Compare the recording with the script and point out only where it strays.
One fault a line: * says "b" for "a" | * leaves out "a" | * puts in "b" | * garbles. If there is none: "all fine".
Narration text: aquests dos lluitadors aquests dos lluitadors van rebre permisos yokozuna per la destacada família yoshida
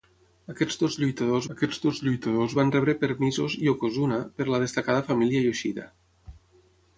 all fine